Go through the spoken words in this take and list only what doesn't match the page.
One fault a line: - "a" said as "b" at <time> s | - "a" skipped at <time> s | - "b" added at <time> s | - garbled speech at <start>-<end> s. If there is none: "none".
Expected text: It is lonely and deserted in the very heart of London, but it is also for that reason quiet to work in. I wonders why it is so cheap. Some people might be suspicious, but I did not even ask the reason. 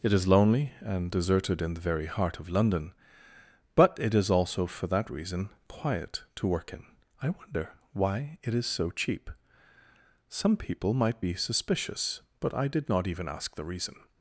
- "wonders" said as "wonder" at 7.3 s